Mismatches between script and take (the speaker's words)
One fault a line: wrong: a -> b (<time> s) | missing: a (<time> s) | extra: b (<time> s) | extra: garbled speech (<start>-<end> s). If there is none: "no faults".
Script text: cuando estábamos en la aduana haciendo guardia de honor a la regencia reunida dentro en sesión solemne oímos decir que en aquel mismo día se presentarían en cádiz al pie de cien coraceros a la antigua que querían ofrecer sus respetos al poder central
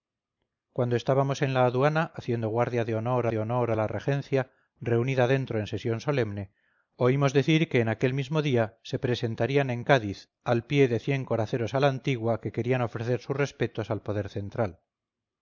extra: de honor (3.3 s)